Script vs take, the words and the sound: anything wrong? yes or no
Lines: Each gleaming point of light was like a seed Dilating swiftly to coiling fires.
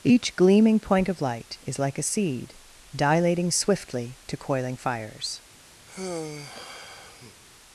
yes